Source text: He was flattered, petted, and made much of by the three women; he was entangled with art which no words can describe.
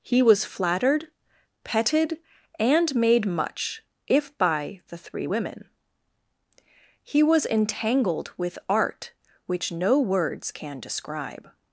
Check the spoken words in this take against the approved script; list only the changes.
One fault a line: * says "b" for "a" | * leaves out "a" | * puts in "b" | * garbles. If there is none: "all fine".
* says "if" for "of"